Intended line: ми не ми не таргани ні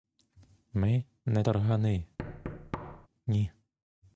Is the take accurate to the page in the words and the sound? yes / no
no